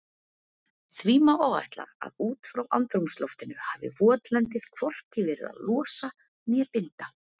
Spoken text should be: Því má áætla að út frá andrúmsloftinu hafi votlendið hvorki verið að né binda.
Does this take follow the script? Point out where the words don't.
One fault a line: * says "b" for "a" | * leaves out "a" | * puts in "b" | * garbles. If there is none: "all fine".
* puts in "losa"